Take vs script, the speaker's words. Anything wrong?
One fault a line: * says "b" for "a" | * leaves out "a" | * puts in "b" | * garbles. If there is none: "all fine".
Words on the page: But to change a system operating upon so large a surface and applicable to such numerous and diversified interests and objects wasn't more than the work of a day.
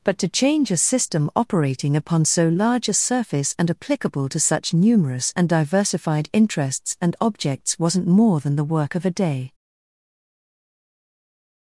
all fine